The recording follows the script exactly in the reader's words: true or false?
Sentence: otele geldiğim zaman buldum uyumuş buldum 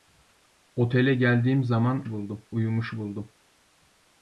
true